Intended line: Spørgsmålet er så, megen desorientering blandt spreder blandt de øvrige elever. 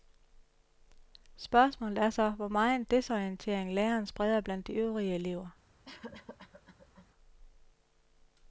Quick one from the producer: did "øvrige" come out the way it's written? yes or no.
yes